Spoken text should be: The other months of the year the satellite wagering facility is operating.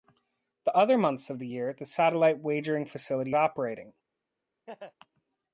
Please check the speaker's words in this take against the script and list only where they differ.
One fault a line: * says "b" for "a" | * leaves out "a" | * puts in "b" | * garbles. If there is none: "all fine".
* leaves out "is"